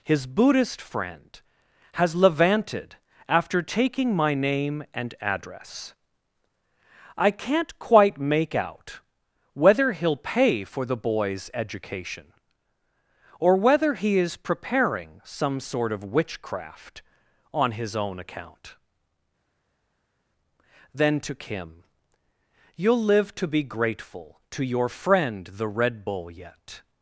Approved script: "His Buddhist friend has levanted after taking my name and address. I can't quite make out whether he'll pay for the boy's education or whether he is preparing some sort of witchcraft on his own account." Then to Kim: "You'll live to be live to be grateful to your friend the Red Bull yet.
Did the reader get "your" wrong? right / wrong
right